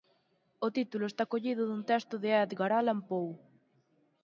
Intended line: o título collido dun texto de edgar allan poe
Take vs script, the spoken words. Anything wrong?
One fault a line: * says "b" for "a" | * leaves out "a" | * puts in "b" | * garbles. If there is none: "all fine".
* puts in "está"